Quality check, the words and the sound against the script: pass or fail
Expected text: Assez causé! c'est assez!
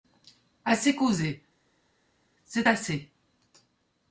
pass